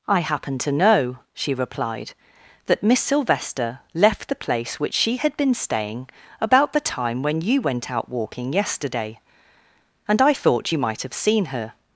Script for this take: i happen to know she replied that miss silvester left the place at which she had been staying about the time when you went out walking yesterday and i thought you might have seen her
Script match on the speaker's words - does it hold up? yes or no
no